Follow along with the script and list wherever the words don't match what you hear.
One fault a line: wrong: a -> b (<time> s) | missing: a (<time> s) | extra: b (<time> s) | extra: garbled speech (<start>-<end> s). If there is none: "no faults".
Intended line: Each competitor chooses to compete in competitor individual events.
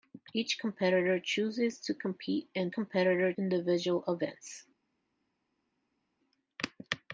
no faults